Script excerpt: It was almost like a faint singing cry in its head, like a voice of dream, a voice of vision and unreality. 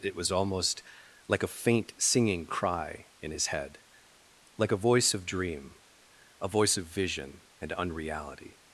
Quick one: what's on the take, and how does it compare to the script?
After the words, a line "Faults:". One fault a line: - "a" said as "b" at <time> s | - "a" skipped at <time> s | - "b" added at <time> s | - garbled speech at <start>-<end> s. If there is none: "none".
It was almost like a faint singing cry in his head, like a voice of dream, a voice of vision and unreality.
Faults:
- "its" said as "his" at 3.3 s